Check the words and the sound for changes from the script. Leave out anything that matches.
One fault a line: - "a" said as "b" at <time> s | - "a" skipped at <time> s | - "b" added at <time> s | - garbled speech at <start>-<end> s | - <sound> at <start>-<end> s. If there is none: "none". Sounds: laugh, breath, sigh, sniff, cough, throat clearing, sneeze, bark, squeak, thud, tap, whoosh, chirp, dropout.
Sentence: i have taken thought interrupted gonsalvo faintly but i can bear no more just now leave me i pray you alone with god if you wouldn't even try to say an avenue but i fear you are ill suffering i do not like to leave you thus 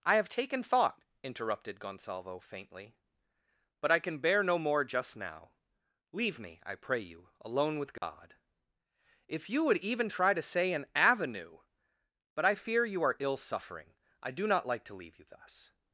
- dropout at 8.0-8.0 s
- "wouldn't" said as "would" at 9.7 s